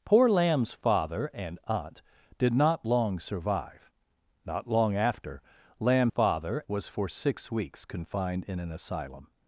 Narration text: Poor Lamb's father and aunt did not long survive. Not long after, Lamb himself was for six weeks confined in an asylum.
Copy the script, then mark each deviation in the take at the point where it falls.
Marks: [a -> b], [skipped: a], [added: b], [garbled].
Poor Lamb's father and aunt did not long survive. Not long after, Lamb [himself -> father] was for six weeks confined in an asylum.